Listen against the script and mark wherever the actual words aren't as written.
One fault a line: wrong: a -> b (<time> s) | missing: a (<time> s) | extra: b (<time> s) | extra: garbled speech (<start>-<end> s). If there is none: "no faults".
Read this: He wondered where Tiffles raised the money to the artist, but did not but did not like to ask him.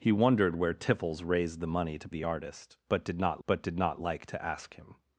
no faults